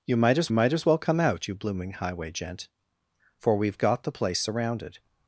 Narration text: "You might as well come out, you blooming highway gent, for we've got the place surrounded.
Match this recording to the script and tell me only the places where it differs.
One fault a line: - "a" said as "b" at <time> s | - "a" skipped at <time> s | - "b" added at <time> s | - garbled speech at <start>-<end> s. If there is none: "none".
- "might as" added at 0.5 s